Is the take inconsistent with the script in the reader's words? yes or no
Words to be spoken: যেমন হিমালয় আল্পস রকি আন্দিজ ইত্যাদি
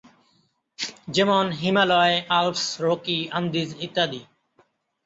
no